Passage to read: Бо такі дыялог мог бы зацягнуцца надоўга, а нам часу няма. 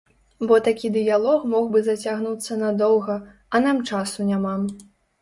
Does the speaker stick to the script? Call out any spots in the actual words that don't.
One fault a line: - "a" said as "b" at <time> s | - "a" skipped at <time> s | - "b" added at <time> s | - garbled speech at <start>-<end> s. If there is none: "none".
none